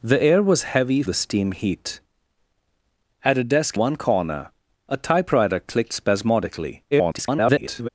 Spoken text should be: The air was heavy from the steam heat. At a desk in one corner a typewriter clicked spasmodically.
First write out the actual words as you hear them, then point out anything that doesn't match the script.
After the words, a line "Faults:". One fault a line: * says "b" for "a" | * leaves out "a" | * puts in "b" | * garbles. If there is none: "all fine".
The air was heavy the steam heat. At a desk one corner a typewriter clicked spasmodically. [garbled]
Faults:
* leaves out "from"
* leaves out "in"
* garbles